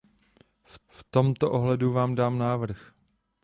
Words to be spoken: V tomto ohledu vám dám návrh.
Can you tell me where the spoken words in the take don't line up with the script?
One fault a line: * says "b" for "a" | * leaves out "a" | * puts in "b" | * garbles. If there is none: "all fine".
* puts in "v"